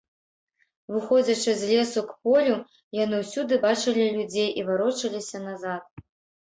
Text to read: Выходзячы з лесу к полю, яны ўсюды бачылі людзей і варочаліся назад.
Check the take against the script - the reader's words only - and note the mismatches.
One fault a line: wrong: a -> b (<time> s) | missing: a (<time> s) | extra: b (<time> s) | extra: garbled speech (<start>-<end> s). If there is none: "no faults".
no faults